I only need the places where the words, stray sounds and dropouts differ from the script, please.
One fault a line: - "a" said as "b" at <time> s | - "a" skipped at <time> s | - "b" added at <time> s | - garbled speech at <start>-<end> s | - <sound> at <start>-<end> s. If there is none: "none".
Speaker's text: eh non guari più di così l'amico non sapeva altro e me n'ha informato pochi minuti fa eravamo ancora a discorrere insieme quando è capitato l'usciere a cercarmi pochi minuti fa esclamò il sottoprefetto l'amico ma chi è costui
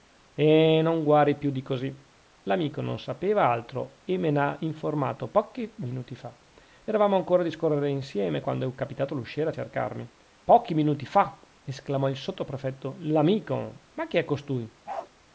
- bark at 14.9-15.1 s